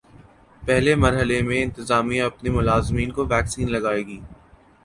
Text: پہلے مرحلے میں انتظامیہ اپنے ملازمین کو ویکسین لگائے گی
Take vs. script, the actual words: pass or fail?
pass